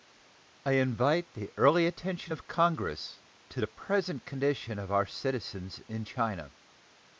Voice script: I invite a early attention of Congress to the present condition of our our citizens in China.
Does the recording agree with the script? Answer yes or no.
no